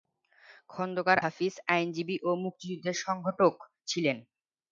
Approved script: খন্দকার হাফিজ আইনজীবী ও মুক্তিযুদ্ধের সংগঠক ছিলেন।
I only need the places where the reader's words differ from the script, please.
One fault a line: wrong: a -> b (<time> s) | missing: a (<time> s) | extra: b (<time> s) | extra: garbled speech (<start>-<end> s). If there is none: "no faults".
no faults